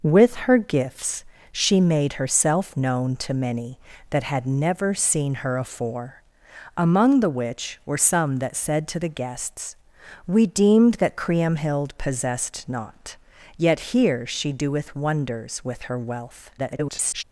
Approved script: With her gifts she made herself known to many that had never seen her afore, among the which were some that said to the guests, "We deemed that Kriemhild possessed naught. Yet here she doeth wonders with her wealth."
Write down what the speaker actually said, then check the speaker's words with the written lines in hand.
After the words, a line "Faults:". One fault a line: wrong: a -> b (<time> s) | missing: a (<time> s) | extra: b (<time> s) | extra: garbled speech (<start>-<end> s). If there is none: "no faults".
With her gifts she made herself known to many that had never seen her afore, among the which were some that said to the guests, "We deemed that Kriemhild possessed naught. Yet here she doeth wonders with her wealth." [garbled]
Faults:
extra: garbled speech (16.6-17.2 s)